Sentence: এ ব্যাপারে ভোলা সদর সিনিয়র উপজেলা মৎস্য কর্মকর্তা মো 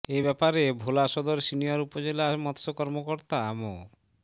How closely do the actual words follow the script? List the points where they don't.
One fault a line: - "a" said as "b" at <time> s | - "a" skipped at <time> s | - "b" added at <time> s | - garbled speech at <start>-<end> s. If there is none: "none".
none